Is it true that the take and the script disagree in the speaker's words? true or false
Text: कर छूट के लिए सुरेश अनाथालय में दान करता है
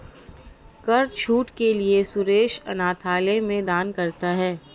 false